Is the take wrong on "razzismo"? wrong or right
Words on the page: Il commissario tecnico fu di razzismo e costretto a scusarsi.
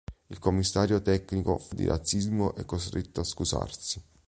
right